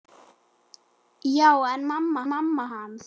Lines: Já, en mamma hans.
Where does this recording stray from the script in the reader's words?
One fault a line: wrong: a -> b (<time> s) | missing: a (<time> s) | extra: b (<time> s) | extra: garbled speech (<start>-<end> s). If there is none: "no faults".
extra: mamma (2.3 s)